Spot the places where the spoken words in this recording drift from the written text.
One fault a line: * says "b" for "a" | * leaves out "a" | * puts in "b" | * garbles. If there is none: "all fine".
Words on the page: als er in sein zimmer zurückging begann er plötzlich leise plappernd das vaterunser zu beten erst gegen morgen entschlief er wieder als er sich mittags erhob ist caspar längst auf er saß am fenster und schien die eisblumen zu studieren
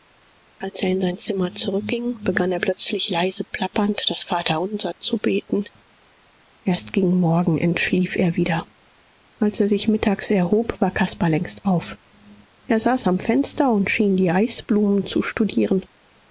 * says "war" for "ist"